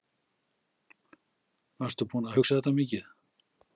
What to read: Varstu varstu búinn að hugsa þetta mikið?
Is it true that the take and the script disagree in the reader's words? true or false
true